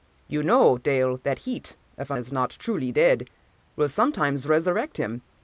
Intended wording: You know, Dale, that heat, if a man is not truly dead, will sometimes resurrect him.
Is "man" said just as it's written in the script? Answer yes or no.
no